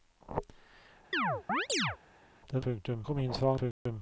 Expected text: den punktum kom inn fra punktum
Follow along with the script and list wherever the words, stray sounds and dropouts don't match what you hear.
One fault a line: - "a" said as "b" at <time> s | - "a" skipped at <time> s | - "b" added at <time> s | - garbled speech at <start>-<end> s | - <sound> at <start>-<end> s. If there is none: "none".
- chirp at 1.1-2.0 s
- dropout at 3.7-3.9 s